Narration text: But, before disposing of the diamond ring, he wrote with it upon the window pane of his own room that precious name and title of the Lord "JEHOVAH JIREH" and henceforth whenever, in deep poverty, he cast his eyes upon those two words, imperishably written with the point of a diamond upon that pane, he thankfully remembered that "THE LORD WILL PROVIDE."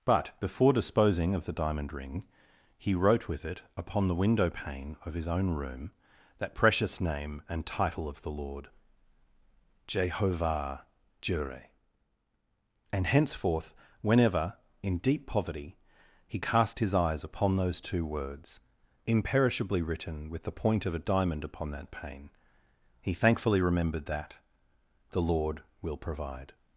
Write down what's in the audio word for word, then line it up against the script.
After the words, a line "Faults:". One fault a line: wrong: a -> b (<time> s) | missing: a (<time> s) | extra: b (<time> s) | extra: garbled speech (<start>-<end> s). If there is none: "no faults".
But, before disposing of the diamond ring, he wrote with it upon the window pane of his own room that precious name and title of the Lord "JEHOVAH JIREH" and henceforth whenever, in deep poverty, he cast his eyes upon those two words, imperishably written with the point of a diamond upon that pane, he thankfully remembered that "THE LORD WILL PROVIDE."
Faults:
no faults